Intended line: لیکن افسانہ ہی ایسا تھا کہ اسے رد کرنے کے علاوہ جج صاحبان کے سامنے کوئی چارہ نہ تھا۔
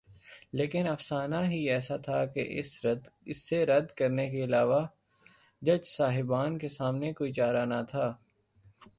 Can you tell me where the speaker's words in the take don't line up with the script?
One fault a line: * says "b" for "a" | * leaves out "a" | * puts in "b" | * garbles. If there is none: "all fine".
all fine